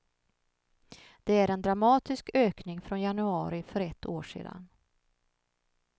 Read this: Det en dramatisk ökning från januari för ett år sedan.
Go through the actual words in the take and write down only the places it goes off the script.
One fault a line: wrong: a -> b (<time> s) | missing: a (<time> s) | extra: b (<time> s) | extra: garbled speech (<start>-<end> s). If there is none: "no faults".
extra: är (1.3 s)